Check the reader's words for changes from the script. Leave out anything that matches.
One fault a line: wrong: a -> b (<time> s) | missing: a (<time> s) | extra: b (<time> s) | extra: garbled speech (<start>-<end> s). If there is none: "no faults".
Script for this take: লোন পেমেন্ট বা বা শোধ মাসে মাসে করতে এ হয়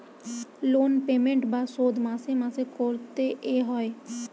missing: বা (1.6 s)